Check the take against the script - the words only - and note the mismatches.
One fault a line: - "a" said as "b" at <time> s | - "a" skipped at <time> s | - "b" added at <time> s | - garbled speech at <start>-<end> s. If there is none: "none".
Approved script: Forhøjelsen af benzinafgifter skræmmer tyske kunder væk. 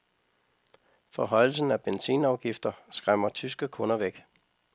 none